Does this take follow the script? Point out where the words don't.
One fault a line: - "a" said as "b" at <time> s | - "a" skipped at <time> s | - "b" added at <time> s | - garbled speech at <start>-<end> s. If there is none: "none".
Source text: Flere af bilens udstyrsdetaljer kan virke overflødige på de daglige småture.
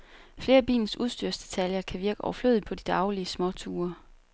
none